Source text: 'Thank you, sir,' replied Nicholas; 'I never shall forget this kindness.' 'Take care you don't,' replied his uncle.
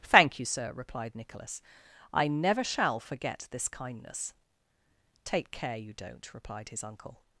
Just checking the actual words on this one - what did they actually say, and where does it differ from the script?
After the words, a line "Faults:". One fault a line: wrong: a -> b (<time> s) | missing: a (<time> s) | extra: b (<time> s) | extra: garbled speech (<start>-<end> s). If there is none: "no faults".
'Thank you, sir,' replied Nicholas; 'I never shall forget this kindness.' 'Take care you don't,' replied his uncle.
Faults:
no faults